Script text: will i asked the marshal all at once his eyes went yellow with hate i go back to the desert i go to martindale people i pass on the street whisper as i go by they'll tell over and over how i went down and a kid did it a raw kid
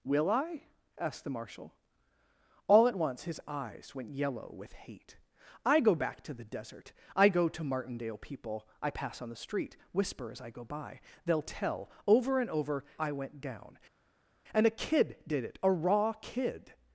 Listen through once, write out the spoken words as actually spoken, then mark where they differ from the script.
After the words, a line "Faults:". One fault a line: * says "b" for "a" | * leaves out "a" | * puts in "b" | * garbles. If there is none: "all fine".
will i asked the marshal all at once his eyes went yellow with hate i go back to the desert i go to martindale people i pass on the street whisper as i go by they'll tell over and over i went down and a kid did it a raw kid
Faults:
* leaves out "how"